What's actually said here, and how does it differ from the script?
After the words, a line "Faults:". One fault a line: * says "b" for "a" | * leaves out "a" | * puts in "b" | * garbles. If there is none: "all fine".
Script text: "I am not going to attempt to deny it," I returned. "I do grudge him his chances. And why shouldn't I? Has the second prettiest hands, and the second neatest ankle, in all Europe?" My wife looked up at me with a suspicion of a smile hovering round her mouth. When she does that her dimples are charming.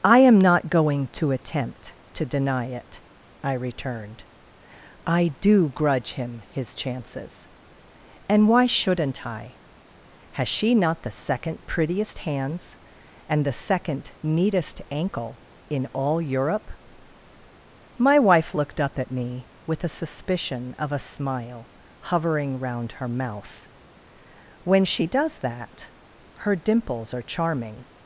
"I am not going to attempt to deny it," I returned. "I do grudge him his chances. And why shouldn't I? Has she not the second prettiest hands, and the second neatest ankle, in all Europe?" My wife looked up at me with a suspicion of a smile hovering round her mouth. When she does that her dimples are charming.
Faults:
* puts in "she not"